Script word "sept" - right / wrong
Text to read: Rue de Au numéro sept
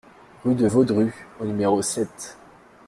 right